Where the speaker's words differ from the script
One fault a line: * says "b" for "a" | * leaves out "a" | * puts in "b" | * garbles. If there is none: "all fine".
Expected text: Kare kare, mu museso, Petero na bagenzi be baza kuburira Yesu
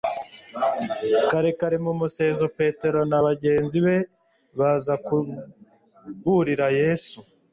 all fine